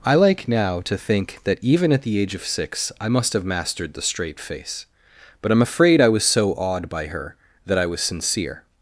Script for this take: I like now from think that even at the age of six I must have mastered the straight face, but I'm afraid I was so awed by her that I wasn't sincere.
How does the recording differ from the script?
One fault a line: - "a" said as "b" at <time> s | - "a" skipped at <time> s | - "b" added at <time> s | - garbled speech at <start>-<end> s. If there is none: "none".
- "from" said as "to" at 0.9 s
- "wasn't" said as "was" at 7.9 s